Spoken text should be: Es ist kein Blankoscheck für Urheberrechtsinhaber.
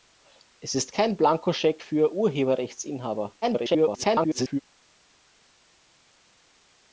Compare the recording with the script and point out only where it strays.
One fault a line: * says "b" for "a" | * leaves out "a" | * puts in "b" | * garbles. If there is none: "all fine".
* garbles